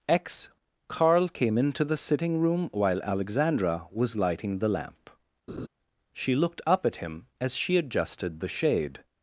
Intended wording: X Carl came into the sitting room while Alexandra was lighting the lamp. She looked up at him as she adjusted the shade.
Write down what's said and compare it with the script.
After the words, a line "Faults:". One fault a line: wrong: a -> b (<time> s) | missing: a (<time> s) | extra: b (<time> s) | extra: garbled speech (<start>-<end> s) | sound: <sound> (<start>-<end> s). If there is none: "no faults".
X Carl came into the sitting room while Alexandra was lighting the lamp. She looked up at him as she adjusted the shade.
Faults:
sound: laugh (5.5-5.7 s)